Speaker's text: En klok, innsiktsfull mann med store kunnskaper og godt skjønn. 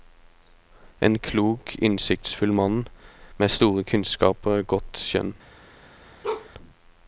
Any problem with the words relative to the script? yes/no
no